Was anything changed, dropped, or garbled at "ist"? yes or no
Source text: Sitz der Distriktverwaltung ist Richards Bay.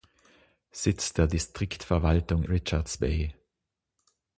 yes